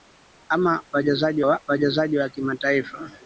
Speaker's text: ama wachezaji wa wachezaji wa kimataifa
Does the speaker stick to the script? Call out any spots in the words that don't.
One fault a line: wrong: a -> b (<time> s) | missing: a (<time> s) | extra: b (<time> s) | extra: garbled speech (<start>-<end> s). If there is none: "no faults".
no faults